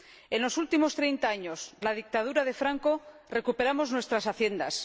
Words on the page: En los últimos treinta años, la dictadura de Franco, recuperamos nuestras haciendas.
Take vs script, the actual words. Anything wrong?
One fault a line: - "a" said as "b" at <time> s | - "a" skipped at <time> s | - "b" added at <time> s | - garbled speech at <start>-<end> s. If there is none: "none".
none